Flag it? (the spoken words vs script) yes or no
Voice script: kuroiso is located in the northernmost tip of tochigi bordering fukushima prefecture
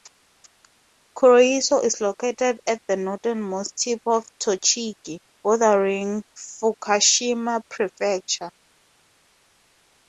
yes